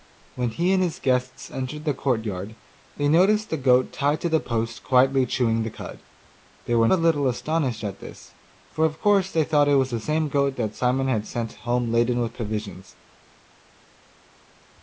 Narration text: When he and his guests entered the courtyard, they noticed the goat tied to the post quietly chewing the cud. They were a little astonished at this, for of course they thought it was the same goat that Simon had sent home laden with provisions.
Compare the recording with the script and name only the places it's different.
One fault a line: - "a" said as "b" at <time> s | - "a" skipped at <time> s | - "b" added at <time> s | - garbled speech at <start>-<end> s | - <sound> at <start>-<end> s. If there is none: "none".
none